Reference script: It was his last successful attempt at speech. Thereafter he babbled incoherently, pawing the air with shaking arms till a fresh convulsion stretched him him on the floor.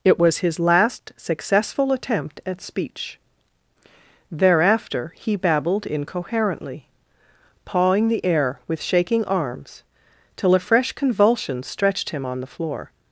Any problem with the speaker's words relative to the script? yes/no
yes